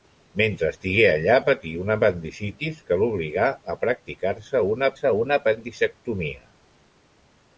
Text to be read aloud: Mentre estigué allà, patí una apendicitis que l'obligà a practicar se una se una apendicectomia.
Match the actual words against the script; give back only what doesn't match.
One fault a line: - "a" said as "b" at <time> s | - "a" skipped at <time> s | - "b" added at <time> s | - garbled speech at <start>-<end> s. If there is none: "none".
none